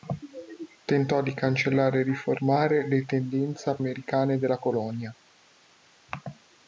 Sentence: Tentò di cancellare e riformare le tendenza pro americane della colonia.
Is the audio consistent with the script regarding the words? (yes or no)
no